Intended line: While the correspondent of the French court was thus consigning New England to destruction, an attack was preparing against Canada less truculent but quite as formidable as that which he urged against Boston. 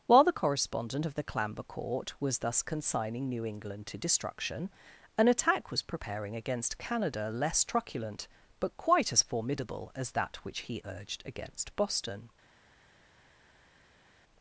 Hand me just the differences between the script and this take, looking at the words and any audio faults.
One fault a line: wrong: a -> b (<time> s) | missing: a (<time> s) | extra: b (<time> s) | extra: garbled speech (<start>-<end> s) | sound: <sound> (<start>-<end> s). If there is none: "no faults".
wrong: French -> Clamber (1.2 s)